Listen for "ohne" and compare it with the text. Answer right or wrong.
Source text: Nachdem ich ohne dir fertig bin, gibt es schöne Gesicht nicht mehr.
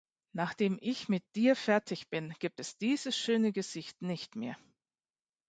wrong